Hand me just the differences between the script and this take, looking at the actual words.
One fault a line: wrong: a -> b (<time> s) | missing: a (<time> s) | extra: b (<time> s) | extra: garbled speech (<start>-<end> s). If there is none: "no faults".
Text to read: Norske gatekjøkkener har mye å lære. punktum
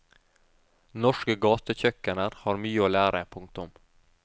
no faults